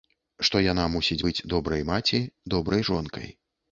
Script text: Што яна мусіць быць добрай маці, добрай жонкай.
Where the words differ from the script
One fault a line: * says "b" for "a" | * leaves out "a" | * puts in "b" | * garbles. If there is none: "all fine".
all fine